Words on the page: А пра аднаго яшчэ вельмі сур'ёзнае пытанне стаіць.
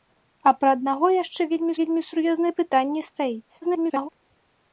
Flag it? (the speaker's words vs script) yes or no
yes